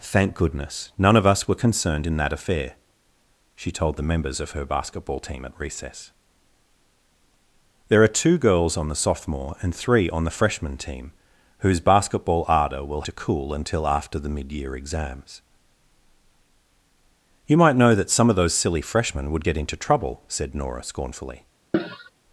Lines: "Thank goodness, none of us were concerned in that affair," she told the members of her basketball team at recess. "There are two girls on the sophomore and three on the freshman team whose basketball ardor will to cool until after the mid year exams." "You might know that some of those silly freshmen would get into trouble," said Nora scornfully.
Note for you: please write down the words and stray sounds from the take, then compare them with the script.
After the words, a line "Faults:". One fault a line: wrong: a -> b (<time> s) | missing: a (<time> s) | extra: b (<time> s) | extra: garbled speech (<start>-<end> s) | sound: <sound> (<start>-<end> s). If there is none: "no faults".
"Thank goodness, none of us were concerned in that affair," she told the members of her basketball team at recess. "There are two girls on the sophomore and three on the freshman team whose basketball ardor will to cool until after the mid year exams." "You might know that some of those silly freshmen would get into trouble," said Nora scornfully.
Faults:
sound: cough (21.7-22.1 s)